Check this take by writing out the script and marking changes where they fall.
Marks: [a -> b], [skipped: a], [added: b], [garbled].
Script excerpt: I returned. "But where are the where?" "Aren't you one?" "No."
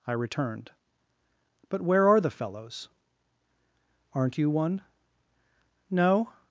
I returned. "But where are the [where?" -> fellows] "Aren't you one?" "No."